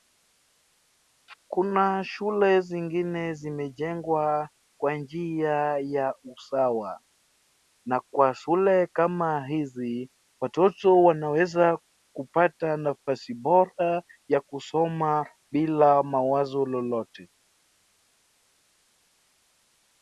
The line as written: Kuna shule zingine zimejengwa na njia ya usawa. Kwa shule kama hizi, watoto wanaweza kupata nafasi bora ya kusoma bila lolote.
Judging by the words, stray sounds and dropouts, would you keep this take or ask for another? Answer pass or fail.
fail